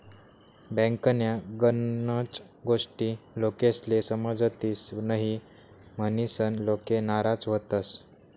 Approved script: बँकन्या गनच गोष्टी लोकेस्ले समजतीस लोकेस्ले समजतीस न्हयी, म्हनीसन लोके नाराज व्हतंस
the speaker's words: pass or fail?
fail